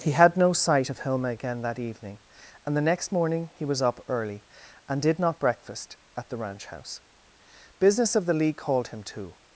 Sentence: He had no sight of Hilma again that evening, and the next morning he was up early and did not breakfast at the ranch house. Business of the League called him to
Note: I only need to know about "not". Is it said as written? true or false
true